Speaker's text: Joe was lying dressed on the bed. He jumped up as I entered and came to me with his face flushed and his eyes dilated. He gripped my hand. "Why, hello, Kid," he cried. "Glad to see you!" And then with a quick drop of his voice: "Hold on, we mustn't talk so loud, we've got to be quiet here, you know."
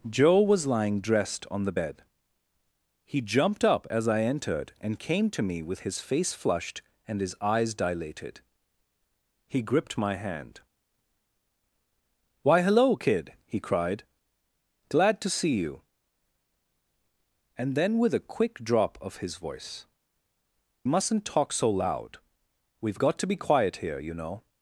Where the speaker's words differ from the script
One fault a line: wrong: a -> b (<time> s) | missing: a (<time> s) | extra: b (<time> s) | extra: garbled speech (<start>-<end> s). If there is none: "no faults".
missing: Hold on we (19.8 s)